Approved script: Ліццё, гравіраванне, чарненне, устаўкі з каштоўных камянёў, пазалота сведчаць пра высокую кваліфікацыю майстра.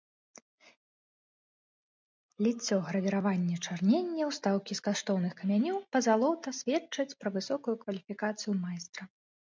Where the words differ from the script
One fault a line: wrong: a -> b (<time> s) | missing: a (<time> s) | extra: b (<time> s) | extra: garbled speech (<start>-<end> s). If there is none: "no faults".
no faults